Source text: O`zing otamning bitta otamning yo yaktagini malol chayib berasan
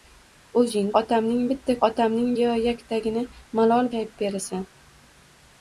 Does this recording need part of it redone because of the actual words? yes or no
no